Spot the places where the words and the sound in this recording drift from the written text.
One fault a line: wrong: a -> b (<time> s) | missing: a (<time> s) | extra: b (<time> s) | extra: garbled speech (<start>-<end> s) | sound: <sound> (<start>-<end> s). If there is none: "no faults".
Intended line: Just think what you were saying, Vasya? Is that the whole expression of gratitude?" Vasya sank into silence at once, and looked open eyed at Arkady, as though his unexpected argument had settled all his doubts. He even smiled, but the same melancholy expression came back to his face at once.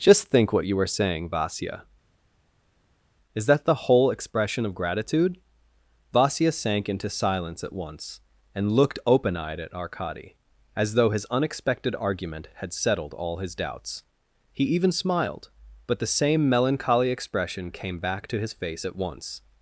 no faults